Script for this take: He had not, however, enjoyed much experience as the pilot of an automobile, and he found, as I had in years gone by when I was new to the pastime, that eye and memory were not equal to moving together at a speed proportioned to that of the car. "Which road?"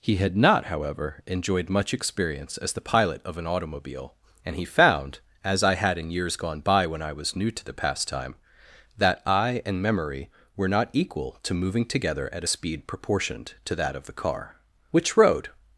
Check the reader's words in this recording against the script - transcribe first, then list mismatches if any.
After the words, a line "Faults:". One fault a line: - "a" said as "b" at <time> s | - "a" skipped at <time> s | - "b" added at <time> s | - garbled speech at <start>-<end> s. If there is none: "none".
He had not, however, enjoyed much experience as the pilot of an automobile, and he found, as I had in years gone by when I was new to the pastime, that eye and memory were not equal to moving together at a speed proportioned to that of the car. "Which road?"
Faults:
none